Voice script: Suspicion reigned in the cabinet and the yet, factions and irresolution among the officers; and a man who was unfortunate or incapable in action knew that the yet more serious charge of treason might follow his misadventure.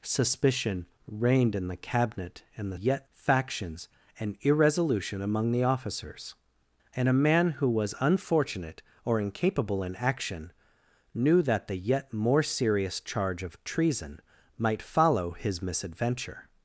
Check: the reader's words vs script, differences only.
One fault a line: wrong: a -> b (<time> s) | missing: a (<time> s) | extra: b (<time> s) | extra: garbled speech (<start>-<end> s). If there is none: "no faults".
no faults